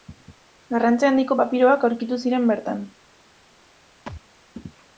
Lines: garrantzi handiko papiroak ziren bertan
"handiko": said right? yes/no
yes